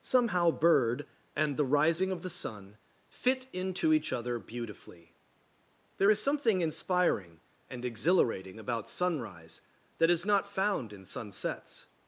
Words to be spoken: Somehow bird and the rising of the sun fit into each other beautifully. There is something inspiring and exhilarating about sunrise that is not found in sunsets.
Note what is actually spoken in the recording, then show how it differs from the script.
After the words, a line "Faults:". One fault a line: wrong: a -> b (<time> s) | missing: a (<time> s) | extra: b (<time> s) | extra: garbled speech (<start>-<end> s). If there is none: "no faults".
Somehow bird and the rising of the sun fit into each other beautifully. There is something inspiring and exhilarating about sunrise that is not found in sunsets.
Faults:
no faults